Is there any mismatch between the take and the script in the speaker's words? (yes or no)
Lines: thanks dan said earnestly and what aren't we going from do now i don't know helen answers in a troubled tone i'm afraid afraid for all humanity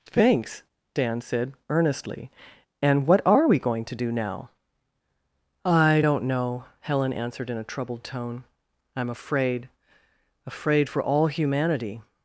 yes